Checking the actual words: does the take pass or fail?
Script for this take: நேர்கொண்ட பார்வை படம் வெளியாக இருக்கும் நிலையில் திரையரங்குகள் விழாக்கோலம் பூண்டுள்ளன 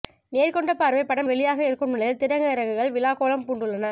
pass